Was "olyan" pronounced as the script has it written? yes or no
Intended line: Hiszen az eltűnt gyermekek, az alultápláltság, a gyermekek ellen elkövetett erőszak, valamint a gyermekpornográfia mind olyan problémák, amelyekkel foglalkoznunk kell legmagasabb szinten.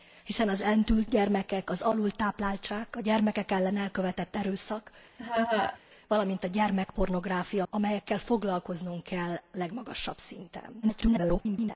no